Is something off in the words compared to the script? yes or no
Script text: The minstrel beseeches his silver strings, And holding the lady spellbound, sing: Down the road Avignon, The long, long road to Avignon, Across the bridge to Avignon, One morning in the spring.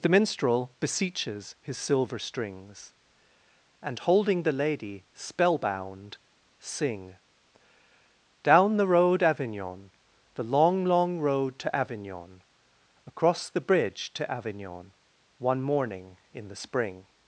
no